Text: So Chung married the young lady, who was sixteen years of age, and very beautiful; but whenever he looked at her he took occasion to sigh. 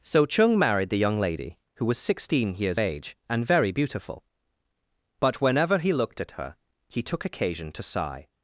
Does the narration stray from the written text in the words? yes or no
yes